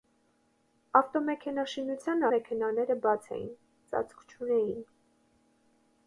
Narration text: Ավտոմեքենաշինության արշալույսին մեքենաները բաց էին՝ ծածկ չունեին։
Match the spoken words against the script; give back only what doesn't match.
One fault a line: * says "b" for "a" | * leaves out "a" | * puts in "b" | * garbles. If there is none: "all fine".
* leaves out "արշալույսին"